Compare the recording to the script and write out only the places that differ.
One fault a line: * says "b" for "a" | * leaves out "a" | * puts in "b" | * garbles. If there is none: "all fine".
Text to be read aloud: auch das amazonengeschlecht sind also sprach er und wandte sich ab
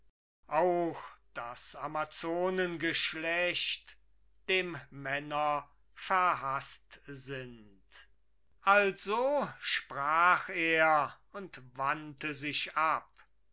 * puts in "dem männer verhaßt"